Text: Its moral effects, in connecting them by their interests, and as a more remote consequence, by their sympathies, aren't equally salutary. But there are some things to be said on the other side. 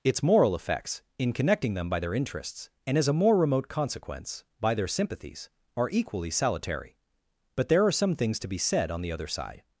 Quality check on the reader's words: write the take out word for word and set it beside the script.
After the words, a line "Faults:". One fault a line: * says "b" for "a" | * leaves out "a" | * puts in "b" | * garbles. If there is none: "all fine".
Its moral effects, in connecting them by their interests, and as a more remote consequence, by their sympathies, are equally salutary. But there are some things to be said on the other side.
Faults:
* says "are" for "aren't"